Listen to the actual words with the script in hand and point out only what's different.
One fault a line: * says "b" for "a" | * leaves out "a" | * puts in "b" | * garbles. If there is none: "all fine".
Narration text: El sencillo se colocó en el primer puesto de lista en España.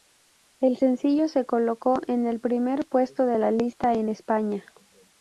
* puts in "la"